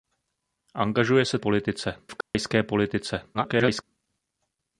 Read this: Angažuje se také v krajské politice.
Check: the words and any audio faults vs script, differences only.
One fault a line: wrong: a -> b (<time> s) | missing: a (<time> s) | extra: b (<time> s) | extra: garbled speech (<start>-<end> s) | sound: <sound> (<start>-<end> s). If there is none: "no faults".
wrong: také -> politice (1.4 s)
sound: dropout (2.2-2.3 s)
extra: garbled speech (3.3-3.8 s)